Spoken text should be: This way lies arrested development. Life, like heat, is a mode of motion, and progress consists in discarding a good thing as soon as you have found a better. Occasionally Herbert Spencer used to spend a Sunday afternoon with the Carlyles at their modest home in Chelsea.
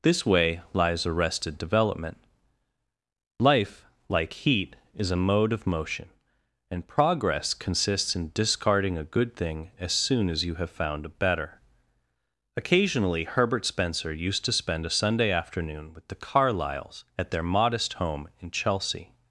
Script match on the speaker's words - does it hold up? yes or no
yes